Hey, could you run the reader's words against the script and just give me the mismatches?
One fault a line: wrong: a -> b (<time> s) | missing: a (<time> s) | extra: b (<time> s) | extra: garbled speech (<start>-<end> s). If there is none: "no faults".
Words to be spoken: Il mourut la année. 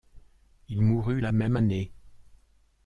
extra: même (1.3 s)